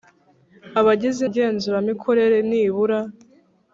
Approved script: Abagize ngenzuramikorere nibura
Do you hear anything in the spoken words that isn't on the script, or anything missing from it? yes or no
no